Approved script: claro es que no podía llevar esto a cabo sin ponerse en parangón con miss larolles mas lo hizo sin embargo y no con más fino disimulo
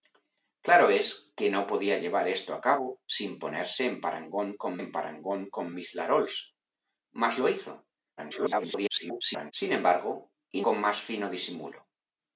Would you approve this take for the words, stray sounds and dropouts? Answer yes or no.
no